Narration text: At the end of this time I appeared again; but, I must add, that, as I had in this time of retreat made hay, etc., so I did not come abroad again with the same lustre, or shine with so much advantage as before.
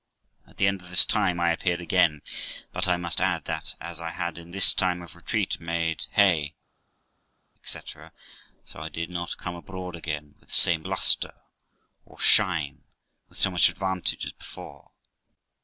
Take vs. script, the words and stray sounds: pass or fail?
pass